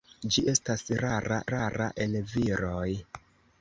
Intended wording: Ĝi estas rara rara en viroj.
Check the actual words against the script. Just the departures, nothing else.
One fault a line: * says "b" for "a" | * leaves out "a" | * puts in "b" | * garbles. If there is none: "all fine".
all fine